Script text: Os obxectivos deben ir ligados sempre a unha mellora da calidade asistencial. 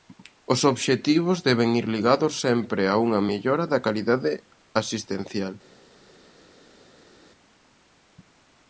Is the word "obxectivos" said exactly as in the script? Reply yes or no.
yes